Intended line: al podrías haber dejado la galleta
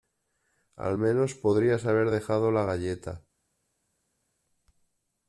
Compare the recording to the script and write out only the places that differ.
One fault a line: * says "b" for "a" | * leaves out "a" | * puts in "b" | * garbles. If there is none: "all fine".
* puts in "menos"